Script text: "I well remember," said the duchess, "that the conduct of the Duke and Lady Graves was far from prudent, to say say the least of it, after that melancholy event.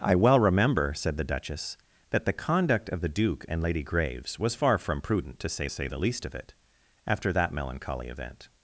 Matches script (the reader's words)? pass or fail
pass